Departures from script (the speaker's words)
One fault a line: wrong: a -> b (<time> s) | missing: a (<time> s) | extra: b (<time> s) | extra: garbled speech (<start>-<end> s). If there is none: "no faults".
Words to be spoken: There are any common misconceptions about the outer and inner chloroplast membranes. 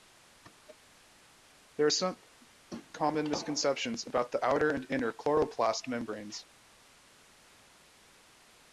wrong: any -> some (1.9 s)